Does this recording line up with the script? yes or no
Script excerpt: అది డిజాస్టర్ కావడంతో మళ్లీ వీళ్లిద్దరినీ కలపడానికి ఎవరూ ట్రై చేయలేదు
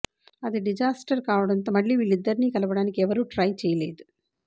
yes